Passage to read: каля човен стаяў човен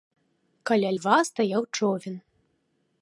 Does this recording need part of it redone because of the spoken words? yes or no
yes